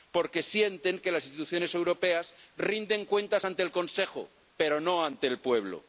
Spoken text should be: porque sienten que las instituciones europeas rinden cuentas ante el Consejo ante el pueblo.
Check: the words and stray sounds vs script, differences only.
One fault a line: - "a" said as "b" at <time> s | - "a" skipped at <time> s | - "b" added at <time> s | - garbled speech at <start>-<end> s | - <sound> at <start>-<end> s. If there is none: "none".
- "pero no" added at 4.6 s